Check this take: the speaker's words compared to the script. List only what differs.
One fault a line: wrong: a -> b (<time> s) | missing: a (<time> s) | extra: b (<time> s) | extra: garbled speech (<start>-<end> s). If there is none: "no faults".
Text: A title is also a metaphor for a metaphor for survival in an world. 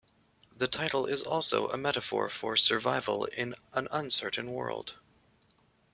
wrong: A -> The (0.6 s)
missing: a metaphor for (2.5 s)
extra: uncertain (3.9 s)